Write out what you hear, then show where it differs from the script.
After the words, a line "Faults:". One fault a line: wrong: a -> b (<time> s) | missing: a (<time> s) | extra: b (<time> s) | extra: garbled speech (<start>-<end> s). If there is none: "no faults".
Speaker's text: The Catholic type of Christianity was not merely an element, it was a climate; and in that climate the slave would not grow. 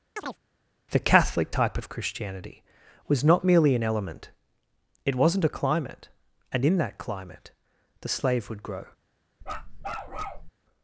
The Catholic type of Christianity was not merely an element, it wasn't a climate; and in that climate the slave would grow.
Faults:
wrong: was -> wasn't (5.2 s)
missing: not (8.6 s)